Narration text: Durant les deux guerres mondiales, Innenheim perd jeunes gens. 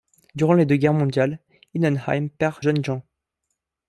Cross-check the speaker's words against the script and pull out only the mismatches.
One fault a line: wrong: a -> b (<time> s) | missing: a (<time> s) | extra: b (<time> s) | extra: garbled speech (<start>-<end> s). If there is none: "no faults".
no faults